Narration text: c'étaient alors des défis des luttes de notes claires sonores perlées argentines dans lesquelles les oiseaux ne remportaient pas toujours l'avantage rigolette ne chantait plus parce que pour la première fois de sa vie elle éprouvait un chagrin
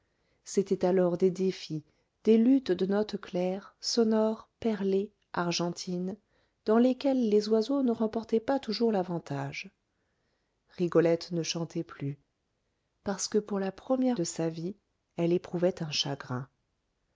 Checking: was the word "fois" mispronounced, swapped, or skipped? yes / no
yes